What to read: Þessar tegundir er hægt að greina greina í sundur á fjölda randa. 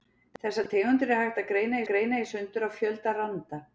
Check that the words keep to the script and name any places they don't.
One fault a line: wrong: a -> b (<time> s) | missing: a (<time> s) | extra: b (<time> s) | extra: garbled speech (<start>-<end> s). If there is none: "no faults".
no faults